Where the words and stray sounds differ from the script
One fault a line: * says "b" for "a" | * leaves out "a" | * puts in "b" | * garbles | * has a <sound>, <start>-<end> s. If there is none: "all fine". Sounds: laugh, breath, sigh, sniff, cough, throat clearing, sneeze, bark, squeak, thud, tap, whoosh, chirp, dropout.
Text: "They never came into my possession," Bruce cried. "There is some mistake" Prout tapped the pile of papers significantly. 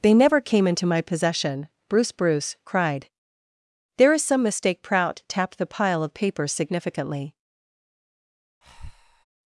* puts in "Bruce"
* has a breath, 8.6-9.2 s